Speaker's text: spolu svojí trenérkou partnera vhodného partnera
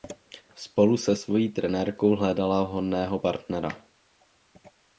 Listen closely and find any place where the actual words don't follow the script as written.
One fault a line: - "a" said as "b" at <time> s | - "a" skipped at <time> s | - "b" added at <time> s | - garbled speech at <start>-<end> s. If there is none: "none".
- "se" added at 1.0 s
- "partnera" said as "hledala" at 2.2 s